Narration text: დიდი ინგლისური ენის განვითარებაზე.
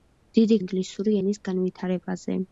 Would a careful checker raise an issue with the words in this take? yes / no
no